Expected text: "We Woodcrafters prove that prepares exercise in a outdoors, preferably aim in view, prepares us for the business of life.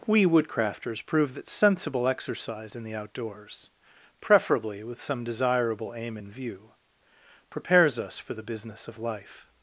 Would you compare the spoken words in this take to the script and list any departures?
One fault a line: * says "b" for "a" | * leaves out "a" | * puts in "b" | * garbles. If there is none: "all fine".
* says "sensible" for "prepares"
* says "the" for "a"
* puts in "with some desirable"